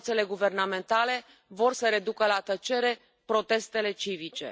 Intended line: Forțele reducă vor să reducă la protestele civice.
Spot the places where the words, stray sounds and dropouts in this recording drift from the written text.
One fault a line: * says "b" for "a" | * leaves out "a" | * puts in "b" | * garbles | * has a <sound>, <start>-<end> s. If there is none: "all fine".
* says "guvernamentale" for "reducă"
* puts in "tăcere"